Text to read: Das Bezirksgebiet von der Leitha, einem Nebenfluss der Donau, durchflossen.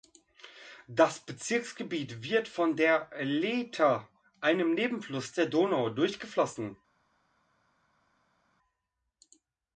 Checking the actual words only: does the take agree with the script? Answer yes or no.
no